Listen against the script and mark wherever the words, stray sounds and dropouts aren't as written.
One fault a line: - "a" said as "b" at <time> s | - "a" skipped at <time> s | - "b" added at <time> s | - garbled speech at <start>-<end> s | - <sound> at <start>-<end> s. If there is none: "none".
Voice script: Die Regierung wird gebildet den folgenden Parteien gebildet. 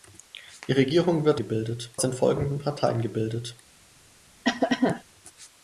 - cough at 4.4-5.0 s